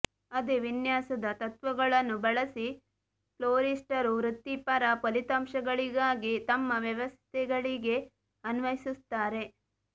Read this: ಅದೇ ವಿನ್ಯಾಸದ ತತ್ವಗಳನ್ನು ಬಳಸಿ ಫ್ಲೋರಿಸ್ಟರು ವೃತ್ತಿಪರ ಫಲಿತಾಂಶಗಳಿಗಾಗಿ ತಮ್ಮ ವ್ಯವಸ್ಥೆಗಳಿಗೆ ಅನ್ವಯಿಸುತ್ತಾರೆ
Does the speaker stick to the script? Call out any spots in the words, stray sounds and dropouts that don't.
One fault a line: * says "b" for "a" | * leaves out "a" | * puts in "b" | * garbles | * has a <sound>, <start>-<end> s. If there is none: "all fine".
all fine